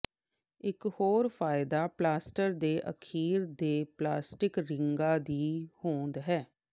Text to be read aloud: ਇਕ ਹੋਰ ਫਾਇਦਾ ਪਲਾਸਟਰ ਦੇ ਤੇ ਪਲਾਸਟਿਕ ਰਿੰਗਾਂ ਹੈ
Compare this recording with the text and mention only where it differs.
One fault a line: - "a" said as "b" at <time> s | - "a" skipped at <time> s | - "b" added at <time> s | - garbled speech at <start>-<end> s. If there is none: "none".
- "ਅਖੀਰ" added at 2.9 s
- "ਦੀ ਹੋਂਦ" added at 5.2 s